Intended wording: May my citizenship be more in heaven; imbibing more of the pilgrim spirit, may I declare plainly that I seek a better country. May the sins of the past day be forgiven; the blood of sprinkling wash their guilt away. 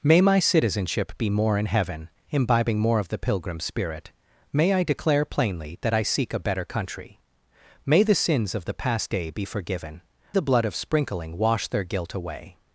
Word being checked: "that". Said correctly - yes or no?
yes